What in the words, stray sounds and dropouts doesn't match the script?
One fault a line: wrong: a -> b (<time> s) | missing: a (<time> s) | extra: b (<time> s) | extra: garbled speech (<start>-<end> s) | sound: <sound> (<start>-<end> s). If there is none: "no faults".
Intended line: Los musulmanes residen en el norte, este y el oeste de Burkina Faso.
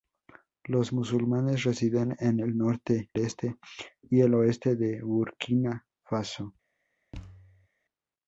sound: thud (7.1-7.7 s)